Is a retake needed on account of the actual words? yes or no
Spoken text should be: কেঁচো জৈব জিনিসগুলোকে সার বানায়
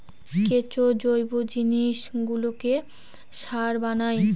no